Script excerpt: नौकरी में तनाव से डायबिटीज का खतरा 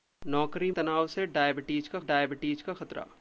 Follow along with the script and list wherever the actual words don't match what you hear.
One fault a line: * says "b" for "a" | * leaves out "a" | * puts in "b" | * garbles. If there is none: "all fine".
* leaves out "में"
* puts in "डायबिटीज का"